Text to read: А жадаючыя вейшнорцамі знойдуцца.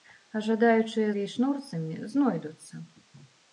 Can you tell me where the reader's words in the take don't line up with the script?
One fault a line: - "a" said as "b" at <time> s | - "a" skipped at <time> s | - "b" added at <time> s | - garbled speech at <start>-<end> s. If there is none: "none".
none